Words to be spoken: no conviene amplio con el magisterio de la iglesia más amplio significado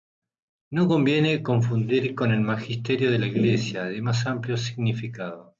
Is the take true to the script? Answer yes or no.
no